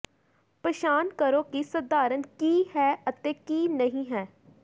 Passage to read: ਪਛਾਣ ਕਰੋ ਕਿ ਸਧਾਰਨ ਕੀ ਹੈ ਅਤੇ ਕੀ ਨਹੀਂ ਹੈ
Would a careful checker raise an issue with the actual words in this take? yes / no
no